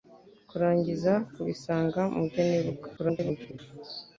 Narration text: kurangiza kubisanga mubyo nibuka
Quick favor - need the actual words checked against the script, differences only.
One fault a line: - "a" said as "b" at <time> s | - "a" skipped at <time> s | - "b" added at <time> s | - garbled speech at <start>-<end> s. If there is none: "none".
- garbled speech at 3.0-3.6 s